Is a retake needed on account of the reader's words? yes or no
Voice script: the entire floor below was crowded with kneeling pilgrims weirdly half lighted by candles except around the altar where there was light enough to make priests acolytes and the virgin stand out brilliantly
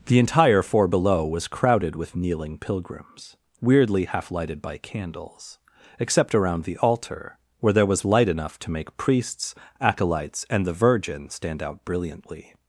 yes